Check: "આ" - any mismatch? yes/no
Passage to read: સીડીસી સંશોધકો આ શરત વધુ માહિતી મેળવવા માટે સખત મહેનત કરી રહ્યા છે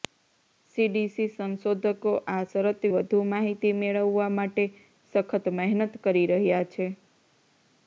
no